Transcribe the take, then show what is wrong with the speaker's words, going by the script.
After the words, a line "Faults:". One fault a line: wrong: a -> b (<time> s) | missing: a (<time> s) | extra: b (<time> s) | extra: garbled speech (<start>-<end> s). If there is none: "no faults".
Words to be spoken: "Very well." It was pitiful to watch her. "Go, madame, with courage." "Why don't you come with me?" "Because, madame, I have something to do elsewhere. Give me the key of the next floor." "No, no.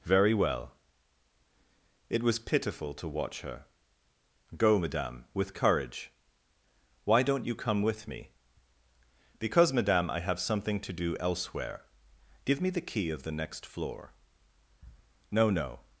"Very well." It was pitiful to watch her. "Go, madame, with courage." "Why don't you come with me?" "Because, madame, I have something to do elsewhere. Give me the key of the next floor." "No, no.
Faults:
no faults